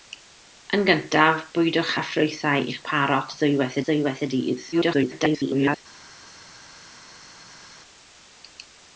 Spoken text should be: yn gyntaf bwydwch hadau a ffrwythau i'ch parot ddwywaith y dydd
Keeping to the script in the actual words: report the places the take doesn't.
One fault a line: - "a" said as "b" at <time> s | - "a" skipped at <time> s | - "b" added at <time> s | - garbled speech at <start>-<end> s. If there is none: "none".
- "hadau" skipped at 1.9 s
- "ddwywaith" added at 3.9 s
- garbled speech at 4.7-5.8 s